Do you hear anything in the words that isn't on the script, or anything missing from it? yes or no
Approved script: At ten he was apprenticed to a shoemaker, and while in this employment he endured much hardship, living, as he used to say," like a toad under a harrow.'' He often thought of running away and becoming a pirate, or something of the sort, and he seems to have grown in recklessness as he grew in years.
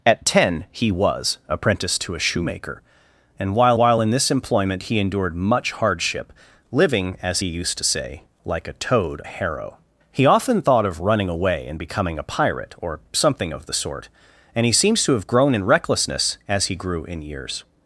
yes